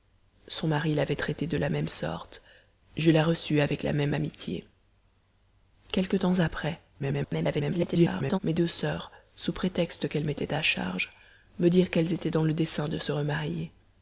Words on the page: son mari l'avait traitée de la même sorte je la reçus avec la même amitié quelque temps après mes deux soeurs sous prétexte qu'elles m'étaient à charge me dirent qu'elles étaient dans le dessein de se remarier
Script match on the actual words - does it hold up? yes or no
no